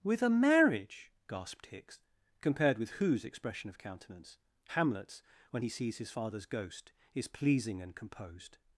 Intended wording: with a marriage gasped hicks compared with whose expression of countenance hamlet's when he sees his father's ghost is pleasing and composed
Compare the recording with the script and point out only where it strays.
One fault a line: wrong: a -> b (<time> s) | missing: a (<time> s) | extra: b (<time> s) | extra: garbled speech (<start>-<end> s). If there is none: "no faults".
no faults